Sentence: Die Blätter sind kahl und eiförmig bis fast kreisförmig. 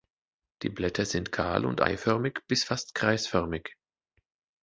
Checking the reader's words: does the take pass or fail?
pass